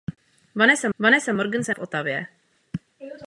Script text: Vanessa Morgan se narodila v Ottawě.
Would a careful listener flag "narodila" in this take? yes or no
yes